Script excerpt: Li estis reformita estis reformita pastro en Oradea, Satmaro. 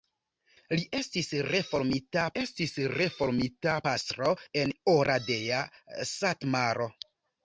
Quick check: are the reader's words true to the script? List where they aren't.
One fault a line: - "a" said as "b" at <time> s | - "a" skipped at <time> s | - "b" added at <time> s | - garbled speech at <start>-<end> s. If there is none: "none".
none